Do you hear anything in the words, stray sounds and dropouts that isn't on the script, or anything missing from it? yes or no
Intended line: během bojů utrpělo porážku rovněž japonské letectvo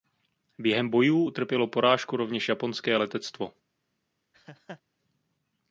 yes